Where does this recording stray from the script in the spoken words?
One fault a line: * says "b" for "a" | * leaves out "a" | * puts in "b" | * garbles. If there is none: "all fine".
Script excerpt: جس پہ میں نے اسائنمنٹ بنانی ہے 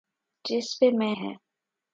* leaves out "نے اسائنمنٹ بنانی"